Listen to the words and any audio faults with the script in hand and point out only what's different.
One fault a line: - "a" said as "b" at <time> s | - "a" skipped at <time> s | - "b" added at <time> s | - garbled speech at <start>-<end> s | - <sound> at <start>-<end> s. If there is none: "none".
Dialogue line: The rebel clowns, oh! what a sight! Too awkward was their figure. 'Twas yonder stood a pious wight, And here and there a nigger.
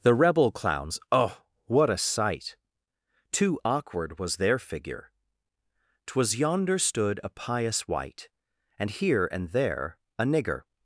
none